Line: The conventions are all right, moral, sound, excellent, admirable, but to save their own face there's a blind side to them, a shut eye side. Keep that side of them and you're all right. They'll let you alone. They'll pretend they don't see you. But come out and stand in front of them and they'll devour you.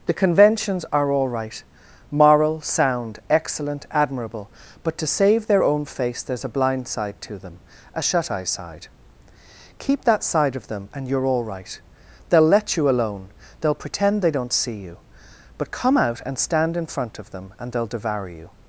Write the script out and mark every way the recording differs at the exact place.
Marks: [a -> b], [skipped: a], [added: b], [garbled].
The conventions are all right, moral, sound, excellent, admirable, but to save their own face there's a blind side to them, a shut eye side. Keep that side of them and you're all right. They'll let you alone. They'll pretend they don't see you. But come out and stand in front of them and they'll devour you.